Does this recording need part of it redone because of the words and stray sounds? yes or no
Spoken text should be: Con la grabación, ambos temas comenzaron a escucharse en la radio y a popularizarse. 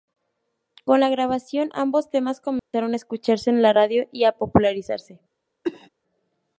yes